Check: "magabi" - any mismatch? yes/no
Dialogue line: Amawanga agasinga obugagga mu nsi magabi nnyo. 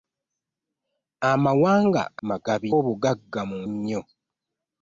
yes